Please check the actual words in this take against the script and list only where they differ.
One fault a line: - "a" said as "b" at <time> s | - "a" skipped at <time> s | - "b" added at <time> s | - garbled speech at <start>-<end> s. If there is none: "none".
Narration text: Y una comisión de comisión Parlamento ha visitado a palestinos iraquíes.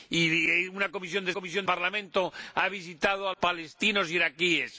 none